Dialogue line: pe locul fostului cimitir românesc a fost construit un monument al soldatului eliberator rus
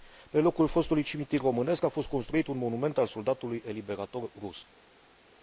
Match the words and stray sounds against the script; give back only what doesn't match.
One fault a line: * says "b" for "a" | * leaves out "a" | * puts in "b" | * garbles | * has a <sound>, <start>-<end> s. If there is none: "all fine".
all fine